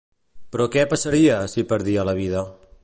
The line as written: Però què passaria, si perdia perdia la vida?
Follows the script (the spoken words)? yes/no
no